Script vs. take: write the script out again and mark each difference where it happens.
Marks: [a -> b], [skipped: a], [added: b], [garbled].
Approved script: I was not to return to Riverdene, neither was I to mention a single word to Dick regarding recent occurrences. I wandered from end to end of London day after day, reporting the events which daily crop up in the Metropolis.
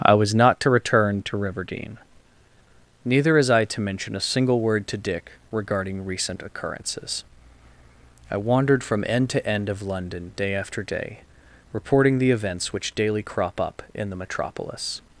I was not to return to Riverdene, neither [was -> is] I to mention a single word to Dick regarding recent occurrences. I wandered from end to end of London day after day, reporting the events which daily crop up in the Metropolis.